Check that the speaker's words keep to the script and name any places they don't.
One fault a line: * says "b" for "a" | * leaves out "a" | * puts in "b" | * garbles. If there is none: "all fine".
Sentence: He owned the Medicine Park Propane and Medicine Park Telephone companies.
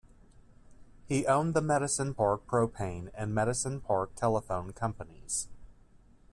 all fine